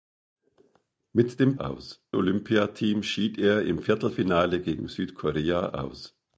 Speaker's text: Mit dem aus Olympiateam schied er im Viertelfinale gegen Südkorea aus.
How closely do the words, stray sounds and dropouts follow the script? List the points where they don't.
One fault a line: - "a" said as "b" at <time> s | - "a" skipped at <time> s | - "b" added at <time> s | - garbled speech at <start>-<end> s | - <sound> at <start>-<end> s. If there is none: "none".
none